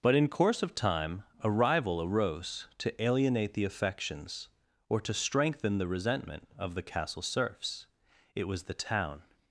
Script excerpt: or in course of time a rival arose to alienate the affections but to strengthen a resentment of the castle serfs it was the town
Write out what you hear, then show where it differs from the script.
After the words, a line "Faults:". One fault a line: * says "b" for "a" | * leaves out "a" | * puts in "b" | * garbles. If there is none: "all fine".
but in course of time a rival arose to alienate the affections or to strengthen the resentment of the castle serfs it was the town
Faults:
* says "but" for "or"
* says "or" for "but"
* says "the" for "a"